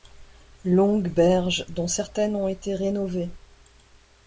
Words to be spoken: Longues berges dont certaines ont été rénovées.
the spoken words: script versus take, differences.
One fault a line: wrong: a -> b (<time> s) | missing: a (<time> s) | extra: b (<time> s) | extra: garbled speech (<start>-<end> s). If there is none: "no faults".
no faults